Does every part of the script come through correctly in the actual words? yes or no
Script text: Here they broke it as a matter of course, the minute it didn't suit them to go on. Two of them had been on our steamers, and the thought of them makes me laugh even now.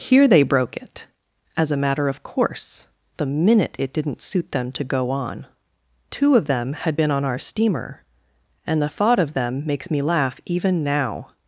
no